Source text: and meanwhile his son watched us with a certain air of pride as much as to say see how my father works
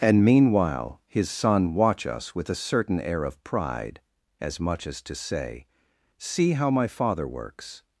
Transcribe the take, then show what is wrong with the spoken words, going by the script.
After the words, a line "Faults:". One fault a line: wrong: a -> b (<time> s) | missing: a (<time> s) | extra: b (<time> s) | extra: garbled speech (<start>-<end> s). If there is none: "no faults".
and meanwhile his son watch us with a certain air of pride as much as to say see how my father works
Faults:
wrong: watched -> watch (1.8 s)